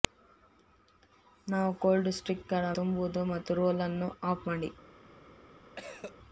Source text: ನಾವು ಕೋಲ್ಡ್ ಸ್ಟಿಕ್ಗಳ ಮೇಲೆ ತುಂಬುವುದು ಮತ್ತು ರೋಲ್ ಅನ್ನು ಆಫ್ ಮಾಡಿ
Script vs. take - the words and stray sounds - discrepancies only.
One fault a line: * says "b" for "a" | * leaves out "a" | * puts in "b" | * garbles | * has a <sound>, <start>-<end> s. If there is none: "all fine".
* leaves out "ಮೇಲೆ"
* has a cough, 5.8-6.2 s